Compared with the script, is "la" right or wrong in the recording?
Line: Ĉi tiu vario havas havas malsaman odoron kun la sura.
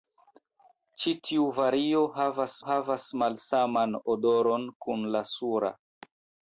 right